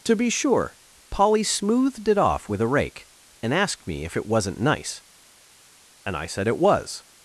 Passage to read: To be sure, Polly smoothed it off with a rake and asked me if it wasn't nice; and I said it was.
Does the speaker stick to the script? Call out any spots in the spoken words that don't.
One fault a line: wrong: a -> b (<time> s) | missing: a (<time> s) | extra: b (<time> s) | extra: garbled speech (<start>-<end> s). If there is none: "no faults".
no faults